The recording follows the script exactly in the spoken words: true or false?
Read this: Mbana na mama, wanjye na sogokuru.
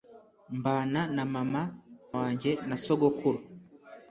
true